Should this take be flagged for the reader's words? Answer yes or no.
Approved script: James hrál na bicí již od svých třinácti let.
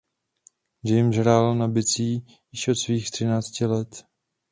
no